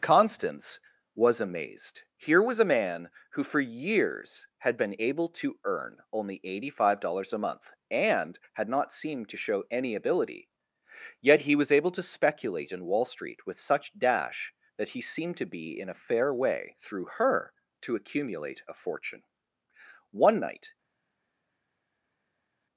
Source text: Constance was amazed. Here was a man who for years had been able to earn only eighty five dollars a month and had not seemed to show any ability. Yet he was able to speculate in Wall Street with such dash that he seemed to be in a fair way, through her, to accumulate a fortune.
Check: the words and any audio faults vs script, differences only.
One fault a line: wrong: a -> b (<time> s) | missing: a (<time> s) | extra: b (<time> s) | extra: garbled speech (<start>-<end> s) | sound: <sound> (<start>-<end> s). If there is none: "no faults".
extra: One night (20.1 s)